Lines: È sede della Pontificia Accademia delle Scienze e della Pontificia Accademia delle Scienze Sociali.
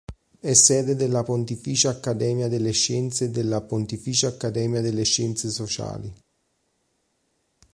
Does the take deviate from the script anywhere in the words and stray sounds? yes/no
no